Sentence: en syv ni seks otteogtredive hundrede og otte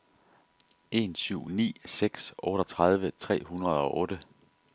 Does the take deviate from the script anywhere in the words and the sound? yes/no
yes